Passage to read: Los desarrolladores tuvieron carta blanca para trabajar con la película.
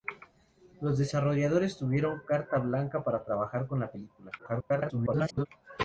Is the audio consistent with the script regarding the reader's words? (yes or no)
no